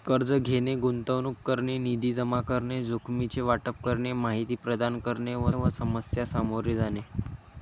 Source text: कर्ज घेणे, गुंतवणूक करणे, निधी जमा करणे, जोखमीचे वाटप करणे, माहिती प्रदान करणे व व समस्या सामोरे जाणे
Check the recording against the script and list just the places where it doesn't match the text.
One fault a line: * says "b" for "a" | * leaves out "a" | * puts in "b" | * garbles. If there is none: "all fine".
all fine